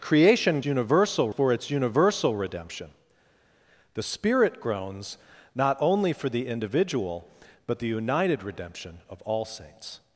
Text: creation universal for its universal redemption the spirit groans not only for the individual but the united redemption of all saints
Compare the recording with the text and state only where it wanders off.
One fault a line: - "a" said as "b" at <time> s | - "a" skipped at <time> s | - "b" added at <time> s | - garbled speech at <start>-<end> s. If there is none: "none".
none